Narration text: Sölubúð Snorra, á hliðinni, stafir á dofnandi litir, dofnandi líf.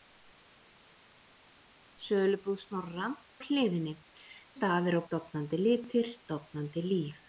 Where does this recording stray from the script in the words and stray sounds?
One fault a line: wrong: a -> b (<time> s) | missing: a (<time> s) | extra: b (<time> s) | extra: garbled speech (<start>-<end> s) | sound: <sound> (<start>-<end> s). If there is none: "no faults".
no faults